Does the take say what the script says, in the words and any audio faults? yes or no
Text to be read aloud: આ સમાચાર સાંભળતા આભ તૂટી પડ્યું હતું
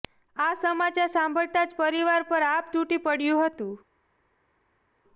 no